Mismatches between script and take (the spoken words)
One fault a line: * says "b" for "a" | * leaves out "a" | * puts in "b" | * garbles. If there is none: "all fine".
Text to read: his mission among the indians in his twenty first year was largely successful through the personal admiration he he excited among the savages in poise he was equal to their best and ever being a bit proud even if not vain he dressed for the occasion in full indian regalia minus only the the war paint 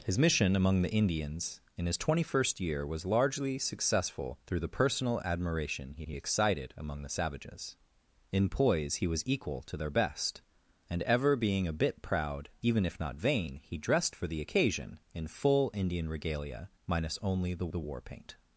all fine